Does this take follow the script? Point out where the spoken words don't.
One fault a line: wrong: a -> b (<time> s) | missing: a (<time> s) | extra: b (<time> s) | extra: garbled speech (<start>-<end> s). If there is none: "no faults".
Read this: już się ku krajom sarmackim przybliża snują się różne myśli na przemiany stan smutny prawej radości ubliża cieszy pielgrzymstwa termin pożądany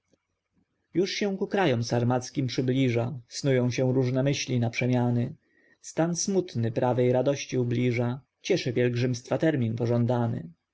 no faults